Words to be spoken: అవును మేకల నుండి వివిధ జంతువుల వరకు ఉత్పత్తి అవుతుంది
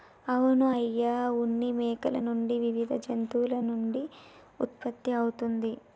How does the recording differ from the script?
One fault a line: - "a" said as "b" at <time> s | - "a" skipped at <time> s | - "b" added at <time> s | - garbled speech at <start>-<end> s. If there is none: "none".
- "అయ్య ఉన్ని" added at 0.7 s
- "వరకు" said as "నుండి" at 3.7 s